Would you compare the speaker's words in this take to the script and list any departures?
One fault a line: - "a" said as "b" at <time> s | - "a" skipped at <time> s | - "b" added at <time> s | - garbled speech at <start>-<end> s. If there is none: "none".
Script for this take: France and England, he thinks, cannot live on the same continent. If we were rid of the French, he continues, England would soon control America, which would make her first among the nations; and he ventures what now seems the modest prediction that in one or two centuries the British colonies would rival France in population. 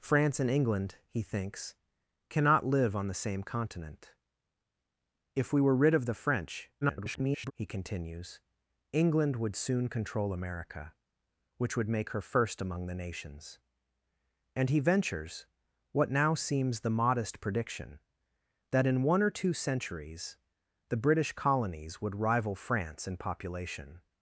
- garbled speech at 6.8-7.5 s